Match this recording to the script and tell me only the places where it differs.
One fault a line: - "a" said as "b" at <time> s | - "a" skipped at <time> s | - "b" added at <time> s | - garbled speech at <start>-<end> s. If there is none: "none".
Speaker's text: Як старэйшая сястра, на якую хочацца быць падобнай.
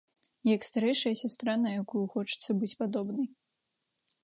none